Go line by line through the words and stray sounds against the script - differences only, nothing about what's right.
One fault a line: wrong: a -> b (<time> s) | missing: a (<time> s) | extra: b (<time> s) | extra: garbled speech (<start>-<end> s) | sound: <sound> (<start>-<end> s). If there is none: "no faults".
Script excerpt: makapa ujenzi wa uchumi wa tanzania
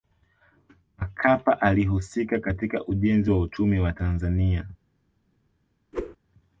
extra: alihusika katika (1.6 s)
sound: whoosh (5.9-6.2 s)